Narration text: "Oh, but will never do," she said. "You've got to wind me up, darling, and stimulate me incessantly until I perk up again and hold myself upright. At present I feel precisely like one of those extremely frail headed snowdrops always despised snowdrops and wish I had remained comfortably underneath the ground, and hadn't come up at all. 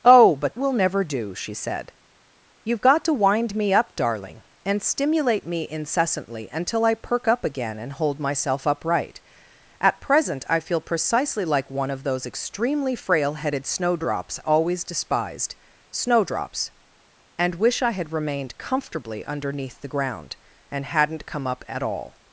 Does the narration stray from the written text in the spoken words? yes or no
no